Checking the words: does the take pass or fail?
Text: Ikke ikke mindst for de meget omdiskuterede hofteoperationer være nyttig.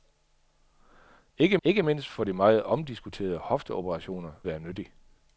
pass